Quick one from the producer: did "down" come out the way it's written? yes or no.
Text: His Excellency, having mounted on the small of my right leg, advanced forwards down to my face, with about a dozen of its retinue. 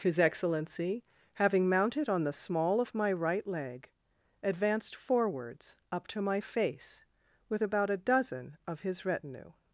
no